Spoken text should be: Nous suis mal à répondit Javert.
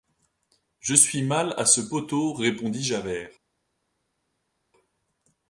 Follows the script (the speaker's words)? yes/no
no